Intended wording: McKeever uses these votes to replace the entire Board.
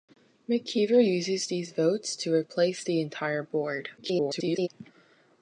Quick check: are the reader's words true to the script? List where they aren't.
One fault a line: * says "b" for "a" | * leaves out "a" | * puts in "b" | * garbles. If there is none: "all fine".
* garbles